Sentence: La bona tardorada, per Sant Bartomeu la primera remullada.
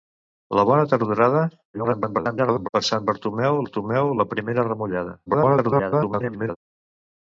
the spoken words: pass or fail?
fail